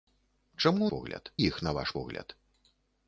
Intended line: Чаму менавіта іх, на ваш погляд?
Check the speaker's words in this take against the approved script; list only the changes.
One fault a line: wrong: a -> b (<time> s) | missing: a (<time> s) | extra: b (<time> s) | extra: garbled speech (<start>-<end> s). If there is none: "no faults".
wrong: менавіта -> погляд (0.9 s)